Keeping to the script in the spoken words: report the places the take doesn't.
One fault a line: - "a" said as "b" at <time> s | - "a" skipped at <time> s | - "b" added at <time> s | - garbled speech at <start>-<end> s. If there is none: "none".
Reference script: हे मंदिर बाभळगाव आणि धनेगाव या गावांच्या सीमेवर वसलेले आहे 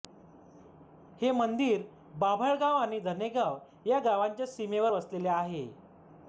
none